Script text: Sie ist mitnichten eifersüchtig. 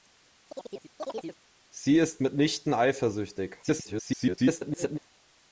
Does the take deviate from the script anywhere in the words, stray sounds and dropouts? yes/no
yes